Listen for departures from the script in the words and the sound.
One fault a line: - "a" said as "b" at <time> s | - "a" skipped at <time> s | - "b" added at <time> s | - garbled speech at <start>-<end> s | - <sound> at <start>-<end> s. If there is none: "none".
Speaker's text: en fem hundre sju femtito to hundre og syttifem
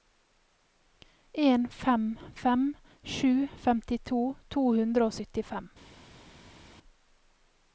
- "hundre" said as "fem" at 2.4 s